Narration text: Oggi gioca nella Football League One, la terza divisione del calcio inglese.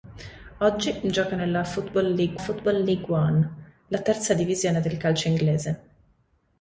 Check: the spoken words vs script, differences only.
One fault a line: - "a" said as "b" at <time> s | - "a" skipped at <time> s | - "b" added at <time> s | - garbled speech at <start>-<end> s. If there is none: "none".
- "Football League" added at 2.4 s